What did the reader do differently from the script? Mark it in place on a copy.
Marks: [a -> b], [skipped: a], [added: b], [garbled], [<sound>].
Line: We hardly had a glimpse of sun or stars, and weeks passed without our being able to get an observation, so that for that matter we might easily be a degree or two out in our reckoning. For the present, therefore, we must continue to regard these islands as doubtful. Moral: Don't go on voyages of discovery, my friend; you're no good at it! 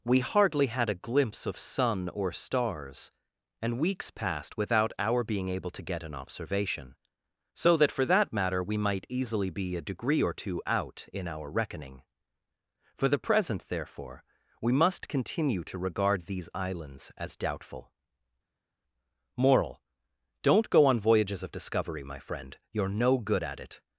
We hardly had a glimpse of sun or stars, and weeks passed without our being able to get an observation, so that for that matter we might easily be a degree or two out in our reckoning. For the present, therefore, we must continue to regard these islands as doubtful. Moral: Don't go on voyages of discovery, my friend; you're no good at it!